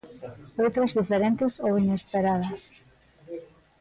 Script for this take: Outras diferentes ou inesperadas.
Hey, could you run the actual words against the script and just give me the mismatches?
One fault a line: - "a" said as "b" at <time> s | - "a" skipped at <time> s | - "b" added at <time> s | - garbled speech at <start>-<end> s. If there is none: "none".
none